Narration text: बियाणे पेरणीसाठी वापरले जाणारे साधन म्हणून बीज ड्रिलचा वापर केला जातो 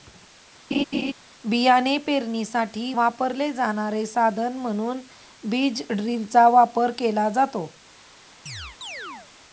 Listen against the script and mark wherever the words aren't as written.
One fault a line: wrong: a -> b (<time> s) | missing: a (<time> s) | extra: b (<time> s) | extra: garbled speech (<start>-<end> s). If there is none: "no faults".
no faults